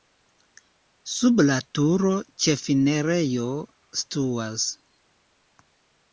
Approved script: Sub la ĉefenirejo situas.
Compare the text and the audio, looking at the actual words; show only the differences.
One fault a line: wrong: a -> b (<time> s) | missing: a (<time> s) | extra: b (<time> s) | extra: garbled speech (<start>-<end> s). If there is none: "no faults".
extra: turo (1.8 s)